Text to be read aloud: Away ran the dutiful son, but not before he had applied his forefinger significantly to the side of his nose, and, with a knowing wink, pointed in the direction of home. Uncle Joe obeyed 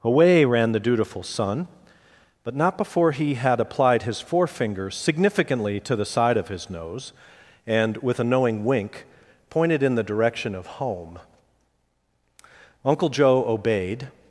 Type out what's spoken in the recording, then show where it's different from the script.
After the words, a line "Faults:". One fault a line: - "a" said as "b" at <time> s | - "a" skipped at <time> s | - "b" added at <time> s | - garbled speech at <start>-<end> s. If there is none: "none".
Away ran the dutiful son, but not before he had applied his forefinger significantly to the side of his nose, and, with a knowing wink, pointed in the direction of home. Uncle Joe obeyed
Faults:
none